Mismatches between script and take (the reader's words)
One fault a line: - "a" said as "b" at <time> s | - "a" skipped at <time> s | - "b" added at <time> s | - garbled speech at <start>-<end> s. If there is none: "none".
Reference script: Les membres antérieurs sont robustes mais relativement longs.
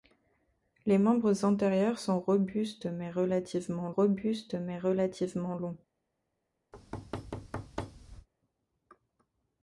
- "robustes mais relativement" added at 3.9 s